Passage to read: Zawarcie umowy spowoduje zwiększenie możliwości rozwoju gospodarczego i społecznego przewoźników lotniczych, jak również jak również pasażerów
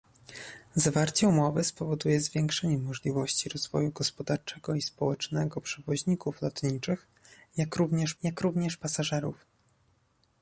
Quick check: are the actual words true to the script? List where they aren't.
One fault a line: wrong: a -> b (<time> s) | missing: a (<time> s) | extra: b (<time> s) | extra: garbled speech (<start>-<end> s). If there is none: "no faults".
no faults